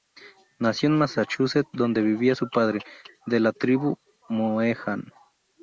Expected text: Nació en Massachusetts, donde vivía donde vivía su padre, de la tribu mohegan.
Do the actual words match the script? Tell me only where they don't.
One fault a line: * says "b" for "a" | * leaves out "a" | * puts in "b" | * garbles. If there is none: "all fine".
* leaves out "donde vivía"